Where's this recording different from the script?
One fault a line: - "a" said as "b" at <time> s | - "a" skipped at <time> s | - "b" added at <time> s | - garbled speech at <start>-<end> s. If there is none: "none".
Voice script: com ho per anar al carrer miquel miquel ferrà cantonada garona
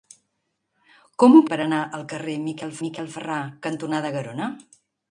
none